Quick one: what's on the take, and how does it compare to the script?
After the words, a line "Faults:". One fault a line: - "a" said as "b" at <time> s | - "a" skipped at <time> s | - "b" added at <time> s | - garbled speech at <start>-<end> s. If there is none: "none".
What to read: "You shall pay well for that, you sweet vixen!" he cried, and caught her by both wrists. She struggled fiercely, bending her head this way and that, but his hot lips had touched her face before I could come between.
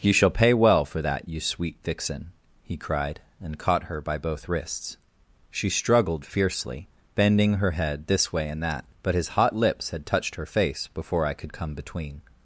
"You shall pay well for that, you sweet vixen!" he cried, and caught her by both wrists. She struggled fiercely, bending her head this way and that, but his hot lips had touched her face before I could come between.
Faults:
none